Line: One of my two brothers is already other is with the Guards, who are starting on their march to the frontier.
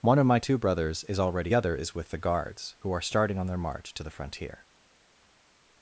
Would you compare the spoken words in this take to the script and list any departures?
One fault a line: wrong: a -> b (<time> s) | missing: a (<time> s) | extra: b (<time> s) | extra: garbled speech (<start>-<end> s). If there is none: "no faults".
no faults